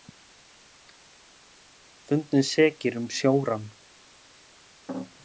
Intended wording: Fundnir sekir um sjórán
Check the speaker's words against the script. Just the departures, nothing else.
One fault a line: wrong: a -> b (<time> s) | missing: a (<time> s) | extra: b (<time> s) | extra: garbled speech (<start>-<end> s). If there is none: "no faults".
no faults